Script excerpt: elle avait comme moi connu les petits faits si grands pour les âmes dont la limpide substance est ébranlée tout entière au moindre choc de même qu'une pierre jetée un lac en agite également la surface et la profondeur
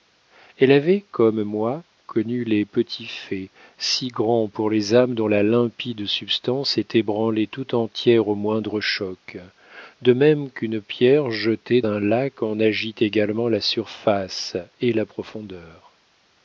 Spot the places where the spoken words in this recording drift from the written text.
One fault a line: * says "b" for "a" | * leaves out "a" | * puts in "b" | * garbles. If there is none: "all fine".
all fine